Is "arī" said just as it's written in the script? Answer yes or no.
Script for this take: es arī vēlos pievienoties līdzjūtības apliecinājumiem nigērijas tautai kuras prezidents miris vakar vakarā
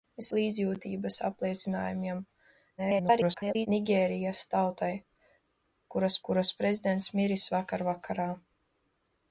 no